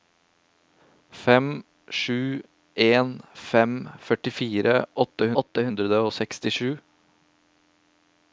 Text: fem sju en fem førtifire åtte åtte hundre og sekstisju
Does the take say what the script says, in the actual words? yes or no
yes